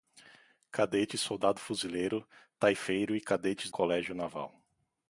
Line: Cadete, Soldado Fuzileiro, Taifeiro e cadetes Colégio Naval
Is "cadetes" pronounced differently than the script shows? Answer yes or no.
no